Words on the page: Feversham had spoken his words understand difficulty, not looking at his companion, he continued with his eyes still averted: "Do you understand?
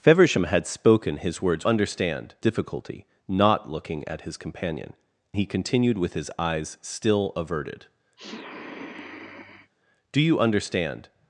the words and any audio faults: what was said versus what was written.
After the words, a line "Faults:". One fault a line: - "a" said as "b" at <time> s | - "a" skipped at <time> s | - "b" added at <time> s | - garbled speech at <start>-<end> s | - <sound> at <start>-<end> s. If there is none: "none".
Feversham had spoken his words understand difficulty, not looking at his companion, he continued with his eyes still averted: "Do you understand?
Faults:
- sniff at 8.2-9.7 s